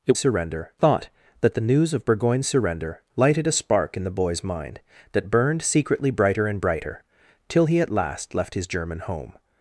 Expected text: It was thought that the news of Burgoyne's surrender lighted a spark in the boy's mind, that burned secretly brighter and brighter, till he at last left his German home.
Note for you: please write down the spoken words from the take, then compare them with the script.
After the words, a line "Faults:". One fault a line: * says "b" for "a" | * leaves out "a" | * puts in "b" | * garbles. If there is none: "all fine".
It surrender thought that the news of Burgoyne's surrender lighted a spark in the boy's mind, that burned secretly brighter and brighter, till he at last left his German home.
Faults:
* says "surrender" for "was"